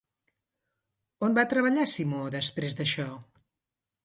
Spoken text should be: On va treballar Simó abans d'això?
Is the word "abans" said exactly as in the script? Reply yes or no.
no